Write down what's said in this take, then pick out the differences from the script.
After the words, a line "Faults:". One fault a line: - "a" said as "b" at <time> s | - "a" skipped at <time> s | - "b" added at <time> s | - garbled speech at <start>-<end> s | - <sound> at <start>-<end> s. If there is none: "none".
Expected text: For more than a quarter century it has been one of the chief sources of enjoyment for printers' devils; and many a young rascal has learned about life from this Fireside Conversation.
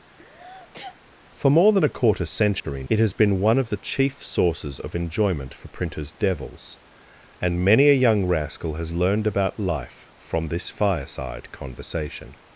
For more than a quarter century it has been one of the chief sources of enjoyment for printers' devils; and many a young rascal has learned about life from this Fireside Conversation.
Faults:
- sneeze at 0.2-1.0 s
- dropout at 2.6-2.6 s